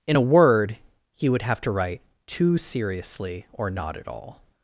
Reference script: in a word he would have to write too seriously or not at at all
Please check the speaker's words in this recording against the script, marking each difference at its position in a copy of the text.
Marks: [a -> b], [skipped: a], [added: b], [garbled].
in a word he would have to write too seriously or not at [skipped: at] all